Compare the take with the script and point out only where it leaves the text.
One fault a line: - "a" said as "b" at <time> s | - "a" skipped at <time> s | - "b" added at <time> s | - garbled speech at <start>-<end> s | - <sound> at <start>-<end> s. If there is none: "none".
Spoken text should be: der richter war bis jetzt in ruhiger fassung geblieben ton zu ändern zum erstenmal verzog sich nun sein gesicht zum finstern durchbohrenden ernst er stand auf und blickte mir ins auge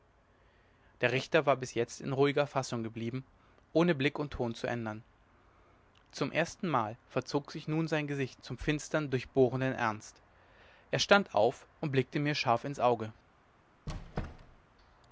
- "ohne blick und" added at 3.7 s
- "scharf" added at 12.3 s
- squeak at 13.9-14.6 s